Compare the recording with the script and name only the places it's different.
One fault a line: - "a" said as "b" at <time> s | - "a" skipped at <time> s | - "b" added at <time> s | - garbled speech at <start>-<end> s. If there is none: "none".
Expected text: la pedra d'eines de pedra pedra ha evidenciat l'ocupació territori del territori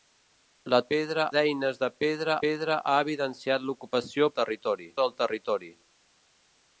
none